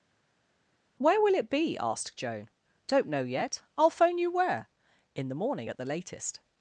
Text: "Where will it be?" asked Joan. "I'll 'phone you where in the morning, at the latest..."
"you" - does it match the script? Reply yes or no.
yes